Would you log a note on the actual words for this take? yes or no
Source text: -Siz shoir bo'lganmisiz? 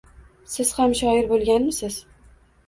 yes